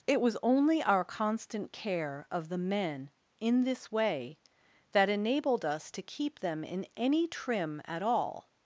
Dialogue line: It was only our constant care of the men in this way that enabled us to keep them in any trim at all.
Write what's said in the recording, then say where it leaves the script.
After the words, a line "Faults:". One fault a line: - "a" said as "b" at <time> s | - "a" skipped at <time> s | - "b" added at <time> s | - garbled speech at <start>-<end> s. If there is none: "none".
It was only our constant care of the men in this way that enabled us to keep them in any trim at all.
Faults:
none